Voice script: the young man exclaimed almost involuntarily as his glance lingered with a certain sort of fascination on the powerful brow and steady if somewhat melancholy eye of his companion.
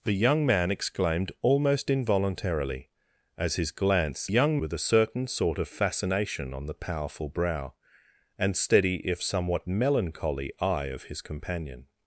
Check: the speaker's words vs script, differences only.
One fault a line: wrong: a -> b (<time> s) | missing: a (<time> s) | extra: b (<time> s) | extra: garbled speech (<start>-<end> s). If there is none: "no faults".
wrong: lingered -> young (4.3 s)